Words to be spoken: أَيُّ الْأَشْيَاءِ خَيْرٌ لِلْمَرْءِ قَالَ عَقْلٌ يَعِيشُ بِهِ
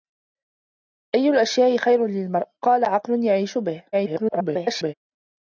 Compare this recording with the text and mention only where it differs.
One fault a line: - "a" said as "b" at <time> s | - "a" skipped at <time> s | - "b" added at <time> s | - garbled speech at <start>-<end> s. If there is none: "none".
- garbled speech at 3.9-4.9 s